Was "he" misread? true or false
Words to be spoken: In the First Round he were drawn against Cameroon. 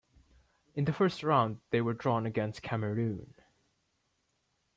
true